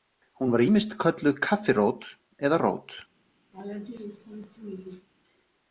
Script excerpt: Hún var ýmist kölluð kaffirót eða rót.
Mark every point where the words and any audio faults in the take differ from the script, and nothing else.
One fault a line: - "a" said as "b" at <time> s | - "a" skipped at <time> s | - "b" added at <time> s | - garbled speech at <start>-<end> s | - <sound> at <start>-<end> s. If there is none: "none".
- laugh at 3.5-5.1 s